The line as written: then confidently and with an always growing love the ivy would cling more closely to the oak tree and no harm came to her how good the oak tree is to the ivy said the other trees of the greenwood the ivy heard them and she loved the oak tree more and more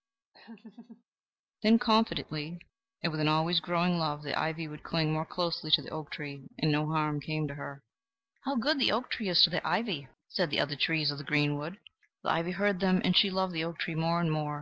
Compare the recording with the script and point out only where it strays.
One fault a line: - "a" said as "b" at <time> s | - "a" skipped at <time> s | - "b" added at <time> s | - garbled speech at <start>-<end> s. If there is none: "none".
none